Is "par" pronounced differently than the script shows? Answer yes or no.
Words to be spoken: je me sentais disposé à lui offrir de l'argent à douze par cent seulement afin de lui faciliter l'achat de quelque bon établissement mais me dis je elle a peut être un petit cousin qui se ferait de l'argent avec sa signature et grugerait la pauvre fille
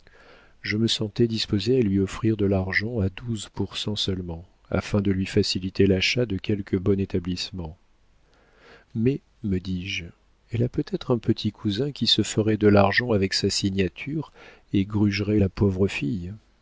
yes